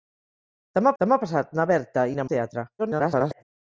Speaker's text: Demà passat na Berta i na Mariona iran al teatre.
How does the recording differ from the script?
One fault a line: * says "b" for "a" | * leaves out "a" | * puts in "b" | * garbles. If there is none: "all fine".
* puts in "demà"
* leaves out "Mariona iran"
* garbles